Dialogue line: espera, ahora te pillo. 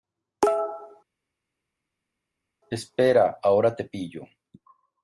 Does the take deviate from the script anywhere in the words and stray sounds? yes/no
no